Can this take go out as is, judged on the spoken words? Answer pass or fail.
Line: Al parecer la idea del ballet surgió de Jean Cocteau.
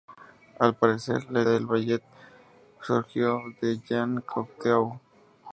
fail